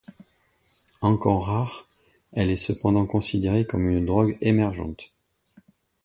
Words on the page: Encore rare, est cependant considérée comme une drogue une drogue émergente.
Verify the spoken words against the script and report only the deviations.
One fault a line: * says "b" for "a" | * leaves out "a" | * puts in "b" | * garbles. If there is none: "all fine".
* puts in "elle"
* leaves out "une drogue"